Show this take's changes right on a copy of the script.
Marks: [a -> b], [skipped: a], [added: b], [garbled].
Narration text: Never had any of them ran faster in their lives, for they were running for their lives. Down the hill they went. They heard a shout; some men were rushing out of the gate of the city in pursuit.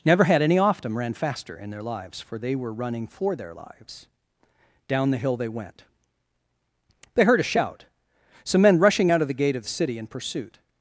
Never had any [of -> off] them ran faster in their lives, for they were running for their lives. Down the hill they went. They heard a shout; some men [skipped: were] rushing out of the gate of the city in pursuit.